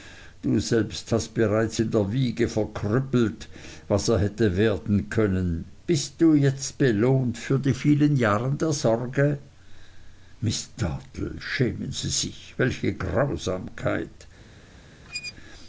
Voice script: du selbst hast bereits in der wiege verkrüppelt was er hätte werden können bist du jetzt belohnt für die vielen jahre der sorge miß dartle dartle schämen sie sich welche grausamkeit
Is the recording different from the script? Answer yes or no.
yes